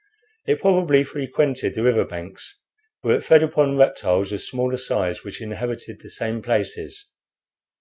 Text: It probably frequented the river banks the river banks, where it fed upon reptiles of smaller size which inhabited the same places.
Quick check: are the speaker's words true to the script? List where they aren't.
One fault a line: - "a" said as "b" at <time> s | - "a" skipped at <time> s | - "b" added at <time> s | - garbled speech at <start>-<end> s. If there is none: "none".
- "the river banks" skipped at 2.6 s